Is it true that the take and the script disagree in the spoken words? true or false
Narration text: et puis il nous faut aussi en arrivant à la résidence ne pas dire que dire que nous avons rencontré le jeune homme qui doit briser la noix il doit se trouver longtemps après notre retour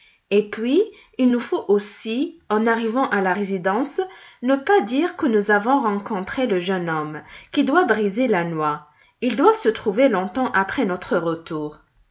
true